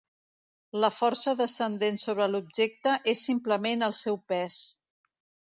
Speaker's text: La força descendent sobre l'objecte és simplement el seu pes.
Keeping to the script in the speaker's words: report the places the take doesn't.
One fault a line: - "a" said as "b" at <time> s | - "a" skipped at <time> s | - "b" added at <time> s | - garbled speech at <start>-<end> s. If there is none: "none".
none